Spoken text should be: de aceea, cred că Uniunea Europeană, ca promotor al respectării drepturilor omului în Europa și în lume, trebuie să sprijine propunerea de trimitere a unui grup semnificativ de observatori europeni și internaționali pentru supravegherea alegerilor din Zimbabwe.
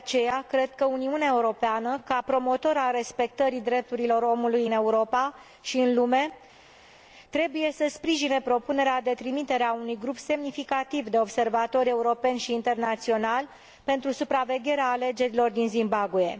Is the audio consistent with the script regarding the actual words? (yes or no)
yes